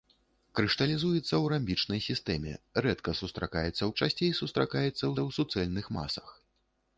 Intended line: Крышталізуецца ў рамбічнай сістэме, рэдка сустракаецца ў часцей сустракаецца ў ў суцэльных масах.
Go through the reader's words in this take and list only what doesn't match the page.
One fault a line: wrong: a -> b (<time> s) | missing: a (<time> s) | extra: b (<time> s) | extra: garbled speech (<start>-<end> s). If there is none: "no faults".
no faults